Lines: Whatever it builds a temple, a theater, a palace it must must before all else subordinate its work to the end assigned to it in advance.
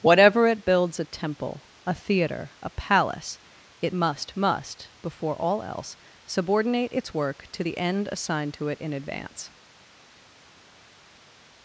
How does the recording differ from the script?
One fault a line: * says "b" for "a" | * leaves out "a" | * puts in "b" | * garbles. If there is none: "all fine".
all fine